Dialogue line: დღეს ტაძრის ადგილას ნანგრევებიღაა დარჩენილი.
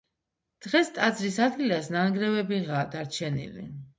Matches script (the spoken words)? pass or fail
pass